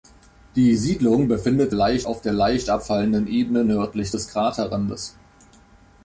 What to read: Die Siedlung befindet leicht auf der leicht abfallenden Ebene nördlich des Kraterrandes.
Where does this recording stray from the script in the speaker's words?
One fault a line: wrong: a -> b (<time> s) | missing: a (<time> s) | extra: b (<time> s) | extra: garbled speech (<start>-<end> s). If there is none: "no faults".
no faults